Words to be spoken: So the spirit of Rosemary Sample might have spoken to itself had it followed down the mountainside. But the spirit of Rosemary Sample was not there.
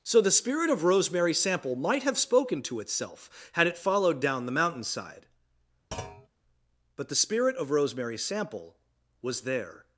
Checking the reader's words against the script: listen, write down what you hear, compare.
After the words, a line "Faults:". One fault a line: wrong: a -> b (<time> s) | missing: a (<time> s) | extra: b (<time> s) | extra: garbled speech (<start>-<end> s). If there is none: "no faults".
So the spirit of Rosemary Sample might have spoken to itself had it followed down the mountainside. But the spirit of Rosemary Sample was there.
Faults:
missing: not (9.4 s)